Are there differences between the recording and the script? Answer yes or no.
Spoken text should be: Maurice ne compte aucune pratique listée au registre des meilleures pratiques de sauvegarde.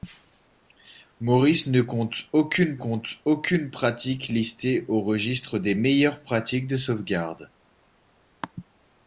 yes